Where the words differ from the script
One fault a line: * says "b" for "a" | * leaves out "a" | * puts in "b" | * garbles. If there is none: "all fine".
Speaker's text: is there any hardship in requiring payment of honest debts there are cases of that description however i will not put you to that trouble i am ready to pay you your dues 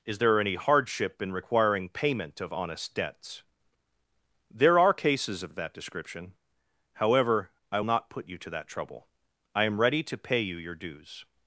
* puts in "of"
* leaves out "will"